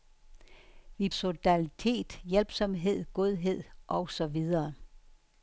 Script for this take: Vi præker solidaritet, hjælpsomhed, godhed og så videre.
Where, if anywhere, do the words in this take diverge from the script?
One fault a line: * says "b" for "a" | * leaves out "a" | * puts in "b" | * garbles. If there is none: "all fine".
* leaves out "præker"